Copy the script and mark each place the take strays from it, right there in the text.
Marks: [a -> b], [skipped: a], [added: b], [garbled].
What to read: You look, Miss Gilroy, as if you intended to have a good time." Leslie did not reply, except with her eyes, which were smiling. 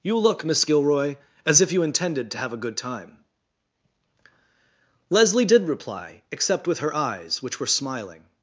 You look, Miss Gilroy, as if you intended to have a good time." Leslie did [skipped: not] reply, except with her eyes, which were smiling.